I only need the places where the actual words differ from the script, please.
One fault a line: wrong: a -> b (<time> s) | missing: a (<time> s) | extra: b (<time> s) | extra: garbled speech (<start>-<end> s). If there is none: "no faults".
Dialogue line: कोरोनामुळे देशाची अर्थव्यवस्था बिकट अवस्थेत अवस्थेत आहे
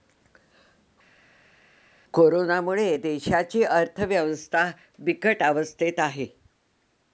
missing: अवस्थेत (6.0 s)